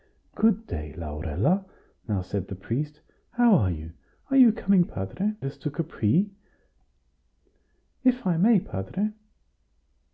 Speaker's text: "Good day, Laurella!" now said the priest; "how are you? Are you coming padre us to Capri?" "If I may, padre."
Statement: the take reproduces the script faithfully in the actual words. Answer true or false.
true